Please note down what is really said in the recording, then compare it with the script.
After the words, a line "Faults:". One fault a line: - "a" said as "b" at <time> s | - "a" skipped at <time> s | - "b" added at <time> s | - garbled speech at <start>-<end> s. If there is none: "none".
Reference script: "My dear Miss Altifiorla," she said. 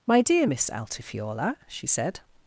"My dear Miss Altifiorla," she said.
Faults:
none